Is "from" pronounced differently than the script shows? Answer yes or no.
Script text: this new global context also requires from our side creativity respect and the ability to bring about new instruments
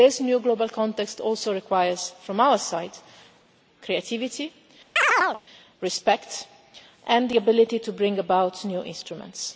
no